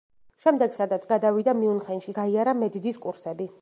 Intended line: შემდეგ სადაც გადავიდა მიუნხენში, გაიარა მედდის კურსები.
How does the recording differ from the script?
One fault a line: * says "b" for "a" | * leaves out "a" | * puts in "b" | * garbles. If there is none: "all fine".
all fine